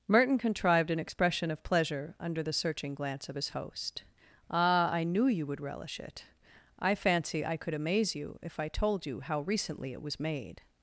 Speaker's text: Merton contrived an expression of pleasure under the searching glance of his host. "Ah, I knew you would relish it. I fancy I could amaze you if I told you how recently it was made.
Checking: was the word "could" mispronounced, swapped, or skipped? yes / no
no